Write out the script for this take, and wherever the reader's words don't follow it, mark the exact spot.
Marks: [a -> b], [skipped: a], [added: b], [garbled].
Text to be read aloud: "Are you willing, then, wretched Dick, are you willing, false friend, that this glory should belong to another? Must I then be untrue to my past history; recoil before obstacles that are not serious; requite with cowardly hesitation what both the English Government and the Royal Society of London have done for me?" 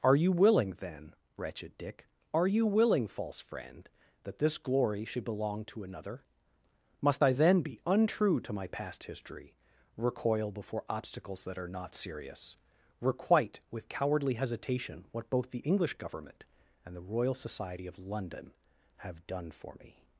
"Are you willing, then, wretched Dick, are you willing, false friend, that this glory should belong to another? Must I then be untrue to my past history; recoil before obstacles that are not serious; requite with cowardly hesitation what both the English Government and the Royal Society of London have done for me?"